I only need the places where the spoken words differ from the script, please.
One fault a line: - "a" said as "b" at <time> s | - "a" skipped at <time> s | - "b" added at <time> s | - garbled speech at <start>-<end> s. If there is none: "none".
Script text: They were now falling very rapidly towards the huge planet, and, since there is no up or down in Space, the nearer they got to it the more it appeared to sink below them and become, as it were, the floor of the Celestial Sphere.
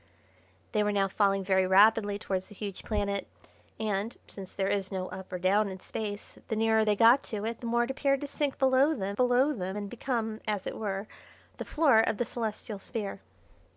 - "below them" added at 9.1 s